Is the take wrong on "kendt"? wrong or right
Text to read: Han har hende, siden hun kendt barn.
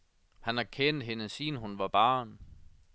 wrong